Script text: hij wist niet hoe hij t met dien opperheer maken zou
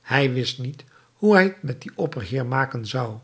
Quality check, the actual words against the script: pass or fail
pass